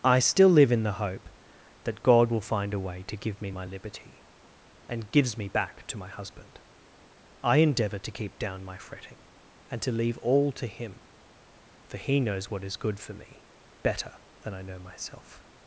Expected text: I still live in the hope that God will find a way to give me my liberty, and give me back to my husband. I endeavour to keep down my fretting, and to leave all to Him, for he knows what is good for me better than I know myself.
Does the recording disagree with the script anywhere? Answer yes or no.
yes